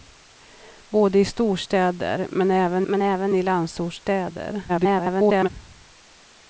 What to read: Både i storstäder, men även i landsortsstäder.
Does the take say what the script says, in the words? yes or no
no